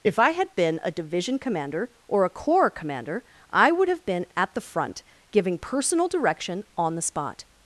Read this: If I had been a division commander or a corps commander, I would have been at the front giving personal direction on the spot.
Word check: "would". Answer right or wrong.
right